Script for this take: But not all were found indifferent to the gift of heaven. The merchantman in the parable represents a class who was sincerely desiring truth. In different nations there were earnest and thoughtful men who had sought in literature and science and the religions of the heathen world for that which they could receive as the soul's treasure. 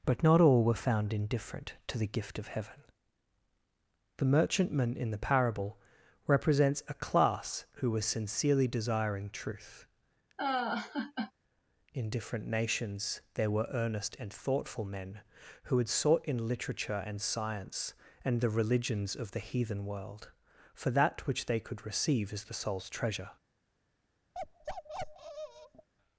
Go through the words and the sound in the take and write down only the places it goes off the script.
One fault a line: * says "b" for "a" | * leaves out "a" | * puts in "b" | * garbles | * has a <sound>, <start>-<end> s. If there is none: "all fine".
* has a laugh, 10.4-11.3 s
* has a bark, 24.3-25.9 s